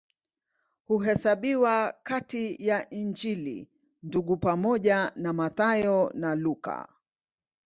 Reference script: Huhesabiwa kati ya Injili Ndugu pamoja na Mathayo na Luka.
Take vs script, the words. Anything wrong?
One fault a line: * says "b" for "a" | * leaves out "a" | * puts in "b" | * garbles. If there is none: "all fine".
all fine